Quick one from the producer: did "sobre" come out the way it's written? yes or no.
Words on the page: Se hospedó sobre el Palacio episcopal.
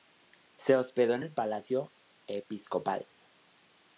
no